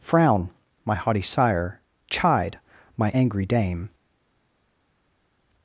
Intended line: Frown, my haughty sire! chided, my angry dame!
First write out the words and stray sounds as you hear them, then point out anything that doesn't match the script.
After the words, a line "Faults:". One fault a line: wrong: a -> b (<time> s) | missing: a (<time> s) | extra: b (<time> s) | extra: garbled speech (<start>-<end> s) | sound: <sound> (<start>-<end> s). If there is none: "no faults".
Frown, my haughty sire! chide, my angry dame!
Faults:
wrong: chided -> chide (2.1 s)